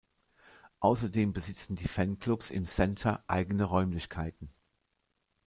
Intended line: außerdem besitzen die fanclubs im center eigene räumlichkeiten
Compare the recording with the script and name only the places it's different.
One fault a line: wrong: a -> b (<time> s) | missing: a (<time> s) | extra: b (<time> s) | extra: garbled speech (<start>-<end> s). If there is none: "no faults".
no faults